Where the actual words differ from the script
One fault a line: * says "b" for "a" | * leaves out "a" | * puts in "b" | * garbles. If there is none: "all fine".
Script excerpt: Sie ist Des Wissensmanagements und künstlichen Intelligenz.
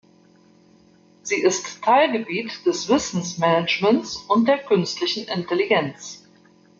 * puts in "Teilgebiet"
* puts in "der"